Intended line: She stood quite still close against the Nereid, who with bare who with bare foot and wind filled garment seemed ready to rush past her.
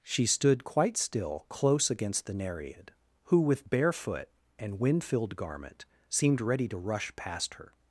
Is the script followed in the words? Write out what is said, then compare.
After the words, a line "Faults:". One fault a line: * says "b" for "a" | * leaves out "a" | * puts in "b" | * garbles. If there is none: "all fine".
She stood quite still close against the Nereid, who with bare foot and wind filled garment seemed ready to rush past her.
Faults:
* leaves out "who with bare"